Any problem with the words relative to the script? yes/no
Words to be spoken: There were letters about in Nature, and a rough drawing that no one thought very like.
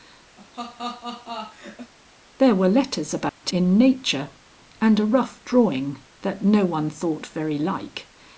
no